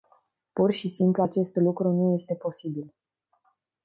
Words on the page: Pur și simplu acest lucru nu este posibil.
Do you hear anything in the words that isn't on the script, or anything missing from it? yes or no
no